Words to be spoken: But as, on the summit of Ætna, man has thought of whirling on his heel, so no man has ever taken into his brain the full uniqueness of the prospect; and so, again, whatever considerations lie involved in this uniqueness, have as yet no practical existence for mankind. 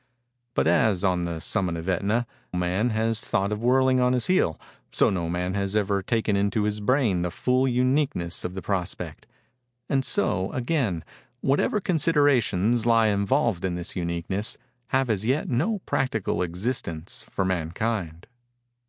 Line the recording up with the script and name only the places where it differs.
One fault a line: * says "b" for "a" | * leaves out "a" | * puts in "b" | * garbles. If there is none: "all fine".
all fine